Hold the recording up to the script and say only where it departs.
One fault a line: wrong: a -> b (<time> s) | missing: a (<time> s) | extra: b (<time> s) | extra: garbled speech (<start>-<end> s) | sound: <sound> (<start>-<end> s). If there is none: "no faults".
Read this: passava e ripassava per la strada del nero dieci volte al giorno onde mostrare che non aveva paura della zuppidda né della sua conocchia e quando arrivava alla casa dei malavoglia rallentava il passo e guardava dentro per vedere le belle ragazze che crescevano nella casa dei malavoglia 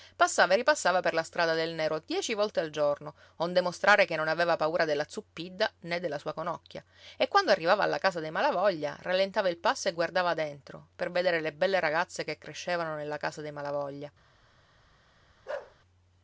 sound: bark (15.5-15.8 s)